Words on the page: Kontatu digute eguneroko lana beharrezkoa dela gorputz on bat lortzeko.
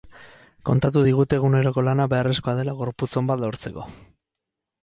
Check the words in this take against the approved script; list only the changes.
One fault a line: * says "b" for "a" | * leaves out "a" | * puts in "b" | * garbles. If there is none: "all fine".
all fine